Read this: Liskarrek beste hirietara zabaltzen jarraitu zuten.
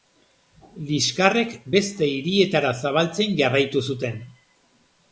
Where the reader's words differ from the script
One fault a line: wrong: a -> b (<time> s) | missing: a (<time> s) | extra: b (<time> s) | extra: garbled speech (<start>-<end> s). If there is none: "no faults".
no faults